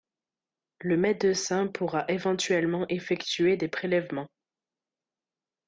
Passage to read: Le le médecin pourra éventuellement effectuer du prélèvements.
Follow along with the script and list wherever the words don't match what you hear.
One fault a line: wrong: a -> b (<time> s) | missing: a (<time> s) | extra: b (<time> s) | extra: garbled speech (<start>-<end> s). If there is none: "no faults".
missing: le (1.0 s)
wrong: du -> des (3.6 s)